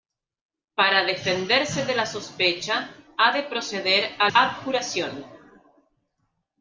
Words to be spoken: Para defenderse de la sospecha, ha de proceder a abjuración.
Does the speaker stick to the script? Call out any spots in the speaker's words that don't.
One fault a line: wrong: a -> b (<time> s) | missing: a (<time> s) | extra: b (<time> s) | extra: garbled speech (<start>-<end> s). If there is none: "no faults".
no faults